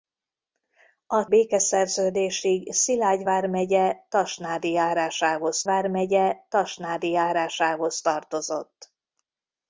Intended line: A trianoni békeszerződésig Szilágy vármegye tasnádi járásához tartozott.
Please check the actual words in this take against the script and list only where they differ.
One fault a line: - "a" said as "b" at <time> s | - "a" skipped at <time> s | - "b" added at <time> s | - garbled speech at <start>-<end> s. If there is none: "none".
- "trianoni" skipped at 1.2 s
- "vármegye tasnádi járásához" added at 5.6 s